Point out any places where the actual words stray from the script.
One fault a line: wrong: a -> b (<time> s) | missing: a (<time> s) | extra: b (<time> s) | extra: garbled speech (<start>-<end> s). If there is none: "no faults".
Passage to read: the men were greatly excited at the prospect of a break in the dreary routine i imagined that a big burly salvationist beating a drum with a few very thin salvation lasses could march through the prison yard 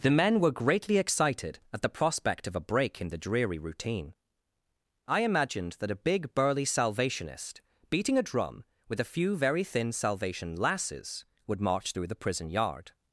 wrong: could -> would (11.4 s)